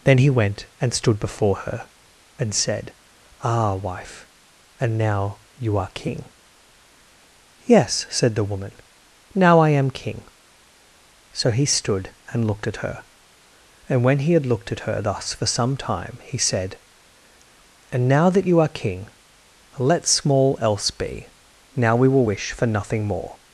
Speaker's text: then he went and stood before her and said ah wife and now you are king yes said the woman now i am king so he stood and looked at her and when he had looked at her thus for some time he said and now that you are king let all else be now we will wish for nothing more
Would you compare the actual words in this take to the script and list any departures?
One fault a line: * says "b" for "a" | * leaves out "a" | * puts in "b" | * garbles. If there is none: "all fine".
* says "small" for "all"